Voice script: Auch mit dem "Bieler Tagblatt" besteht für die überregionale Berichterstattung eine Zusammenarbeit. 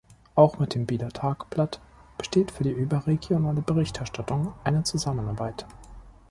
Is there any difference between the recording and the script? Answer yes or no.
no